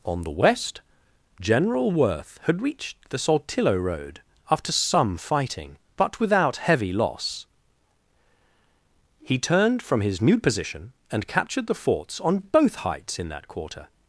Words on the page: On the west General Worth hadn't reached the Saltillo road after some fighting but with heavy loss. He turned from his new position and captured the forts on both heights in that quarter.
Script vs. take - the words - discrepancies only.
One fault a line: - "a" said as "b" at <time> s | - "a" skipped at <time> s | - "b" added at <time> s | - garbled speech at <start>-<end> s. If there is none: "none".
- "hadn't" said as "had" at 2.4 s
- "with" said as "without" at 6.2 s